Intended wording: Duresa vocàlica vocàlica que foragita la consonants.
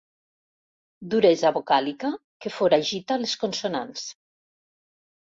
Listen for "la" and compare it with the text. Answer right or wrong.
wrong